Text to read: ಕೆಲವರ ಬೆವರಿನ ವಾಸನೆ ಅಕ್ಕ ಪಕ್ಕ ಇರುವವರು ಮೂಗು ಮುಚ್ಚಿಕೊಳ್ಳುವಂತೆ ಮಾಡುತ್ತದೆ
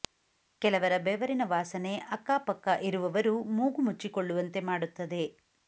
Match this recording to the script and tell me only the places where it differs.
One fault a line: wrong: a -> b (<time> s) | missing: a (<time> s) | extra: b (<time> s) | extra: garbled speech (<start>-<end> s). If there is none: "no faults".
no faults